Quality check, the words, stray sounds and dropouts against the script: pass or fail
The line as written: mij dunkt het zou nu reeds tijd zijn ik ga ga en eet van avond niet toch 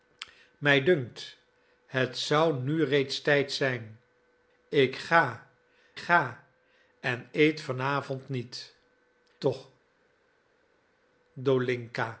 pass